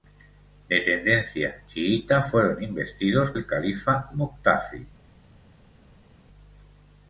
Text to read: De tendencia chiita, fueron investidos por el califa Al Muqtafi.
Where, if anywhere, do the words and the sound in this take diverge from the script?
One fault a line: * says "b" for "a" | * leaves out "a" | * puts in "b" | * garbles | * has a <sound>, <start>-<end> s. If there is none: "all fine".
* leaves out "por"
* leaves out "Al"